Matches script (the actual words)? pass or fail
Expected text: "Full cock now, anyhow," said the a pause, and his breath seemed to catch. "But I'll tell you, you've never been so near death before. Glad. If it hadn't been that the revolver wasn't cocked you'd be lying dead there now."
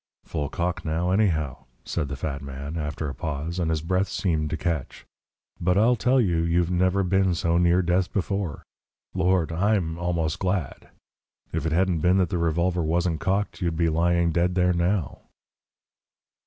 fail